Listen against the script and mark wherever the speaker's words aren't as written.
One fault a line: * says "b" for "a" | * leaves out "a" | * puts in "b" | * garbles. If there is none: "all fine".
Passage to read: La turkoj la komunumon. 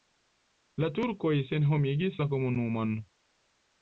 * puts in "senhomigis"